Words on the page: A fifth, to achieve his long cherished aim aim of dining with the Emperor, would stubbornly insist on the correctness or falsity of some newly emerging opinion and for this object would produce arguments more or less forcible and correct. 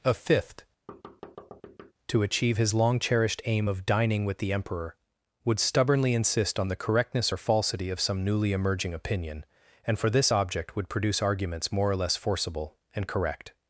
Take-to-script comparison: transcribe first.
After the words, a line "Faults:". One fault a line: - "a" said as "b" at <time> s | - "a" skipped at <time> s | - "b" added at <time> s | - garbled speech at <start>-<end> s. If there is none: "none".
A fifth, to achieve his long cherished aim of dining with the Emperor, would stubbornly insist on the correctness or falsity of some newly emerging opinion and for this object would produce arguments more or less forcible and correct.
Faults:
- "aim" skipped at 3.7 s